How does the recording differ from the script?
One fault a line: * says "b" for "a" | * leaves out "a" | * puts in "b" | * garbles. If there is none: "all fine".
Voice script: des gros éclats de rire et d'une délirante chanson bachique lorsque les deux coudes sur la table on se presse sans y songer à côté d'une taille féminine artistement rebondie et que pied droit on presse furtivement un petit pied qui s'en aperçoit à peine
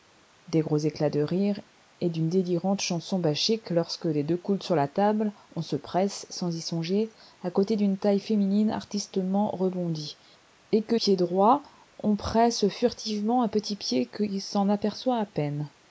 all fine